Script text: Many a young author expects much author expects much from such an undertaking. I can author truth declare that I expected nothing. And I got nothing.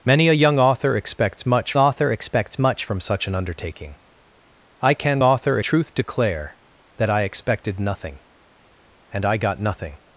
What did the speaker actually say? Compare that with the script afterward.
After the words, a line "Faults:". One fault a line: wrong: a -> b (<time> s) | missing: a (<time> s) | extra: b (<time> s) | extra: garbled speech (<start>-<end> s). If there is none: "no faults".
Many a young author expects much author expects much from such an undertaking. I can author truth declare that I expected nothing. And I got nothing.
Faults:
no faults